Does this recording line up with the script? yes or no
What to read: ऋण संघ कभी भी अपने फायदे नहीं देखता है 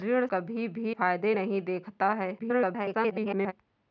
no